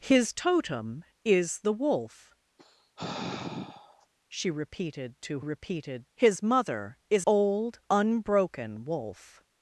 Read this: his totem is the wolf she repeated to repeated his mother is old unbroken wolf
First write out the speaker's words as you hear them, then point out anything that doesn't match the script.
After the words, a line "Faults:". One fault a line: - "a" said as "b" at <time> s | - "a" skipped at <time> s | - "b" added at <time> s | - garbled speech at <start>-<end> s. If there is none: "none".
his totem is the wolf she repeated to repeated his mother is old unbroken wolf
Faults:
none